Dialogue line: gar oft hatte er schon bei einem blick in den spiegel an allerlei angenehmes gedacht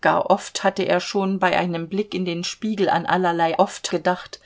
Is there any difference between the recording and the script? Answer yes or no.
yes